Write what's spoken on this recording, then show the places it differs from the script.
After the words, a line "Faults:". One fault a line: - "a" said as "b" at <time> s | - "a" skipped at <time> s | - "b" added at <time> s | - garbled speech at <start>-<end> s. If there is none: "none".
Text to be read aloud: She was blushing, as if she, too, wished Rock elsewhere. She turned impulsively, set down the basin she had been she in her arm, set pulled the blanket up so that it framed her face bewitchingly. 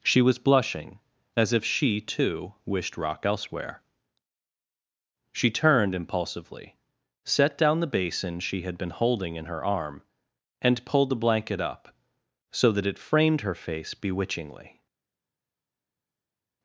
She was blushing, as if she, too, wished Rock elsewhere. She turned impulsively, set down the basin she had been holding in her arm, and pulled the blanket up so that it framed her face bewitchingly.
Faults:
- "she" said as "holding" at 8.9 s
- "set" said as "and" at 10.6 s